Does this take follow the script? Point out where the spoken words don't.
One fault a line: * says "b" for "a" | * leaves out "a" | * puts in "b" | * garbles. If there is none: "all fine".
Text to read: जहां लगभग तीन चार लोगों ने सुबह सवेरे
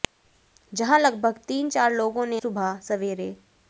all fine